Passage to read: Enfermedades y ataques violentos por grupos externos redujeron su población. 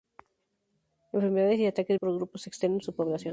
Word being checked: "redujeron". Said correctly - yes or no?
no